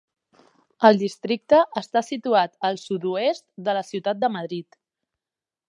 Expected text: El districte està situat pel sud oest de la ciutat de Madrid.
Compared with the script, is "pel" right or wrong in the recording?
wrong